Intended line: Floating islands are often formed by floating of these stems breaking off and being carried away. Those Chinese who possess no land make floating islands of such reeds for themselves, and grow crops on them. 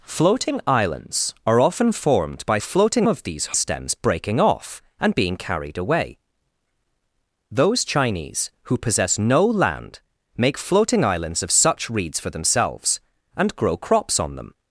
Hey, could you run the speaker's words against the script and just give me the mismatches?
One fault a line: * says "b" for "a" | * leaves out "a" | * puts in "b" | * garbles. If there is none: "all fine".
all fine